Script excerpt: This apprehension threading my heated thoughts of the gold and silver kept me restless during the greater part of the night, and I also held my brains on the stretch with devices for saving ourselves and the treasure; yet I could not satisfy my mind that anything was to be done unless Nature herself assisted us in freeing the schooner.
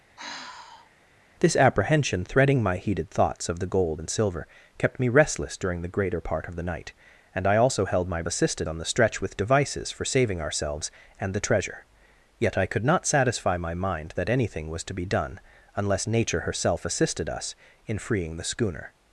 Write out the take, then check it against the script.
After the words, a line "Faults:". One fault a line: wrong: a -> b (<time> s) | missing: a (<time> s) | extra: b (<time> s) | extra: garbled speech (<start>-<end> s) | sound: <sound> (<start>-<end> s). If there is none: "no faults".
This apprehension threading my heated thoughts of the gold and silver kept me restless during the greater part of the night, and I also held my assisted on the stretch with devices for saving ourselves and the treasure; yet I could not satisfy my mind that anything was to be done unless Nature herself assisted us in freeing the schooner.
Faults:
sound: sigh (0.2-0.9 s)
wrong: brains -> assisted (8.3 s)